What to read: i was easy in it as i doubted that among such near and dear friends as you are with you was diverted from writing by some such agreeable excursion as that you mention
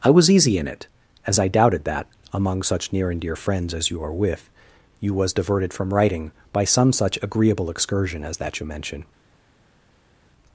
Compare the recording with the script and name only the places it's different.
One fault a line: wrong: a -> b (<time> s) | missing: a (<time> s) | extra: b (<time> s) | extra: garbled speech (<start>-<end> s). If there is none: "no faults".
no faults